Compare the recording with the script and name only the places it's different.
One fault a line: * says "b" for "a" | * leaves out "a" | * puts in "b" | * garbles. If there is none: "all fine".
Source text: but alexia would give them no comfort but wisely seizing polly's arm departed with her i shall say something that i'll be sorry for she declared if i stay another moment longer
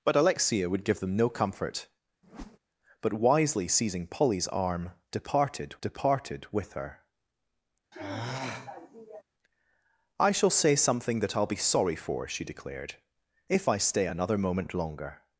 * puts in "departed"